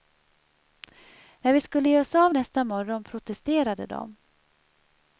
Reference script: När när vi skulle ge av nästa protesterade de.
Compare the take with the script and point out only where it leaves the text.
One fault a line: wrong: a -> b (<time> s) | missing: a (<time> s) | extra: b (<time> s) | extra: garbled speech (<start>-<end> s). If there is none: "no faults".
missing: när (1.5 s)
extra: oss (2.0 s)
extra: morgon (2.6 s)